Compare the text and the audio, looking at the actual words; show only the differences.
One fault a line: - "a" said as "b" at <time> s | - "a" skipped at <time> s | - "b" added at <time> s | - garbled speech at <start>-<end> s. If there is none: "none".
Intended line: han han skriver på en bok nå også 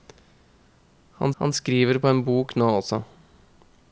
none